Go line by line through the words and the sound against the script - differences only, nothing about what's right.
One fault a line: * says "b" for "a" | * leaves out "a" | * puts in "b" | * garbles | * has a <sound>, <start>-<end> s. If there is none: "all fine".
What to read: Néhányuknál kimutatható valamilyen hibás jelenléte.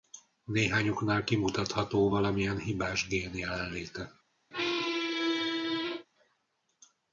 * puts in "gén"
* has a squeak, 4.5-6.1 s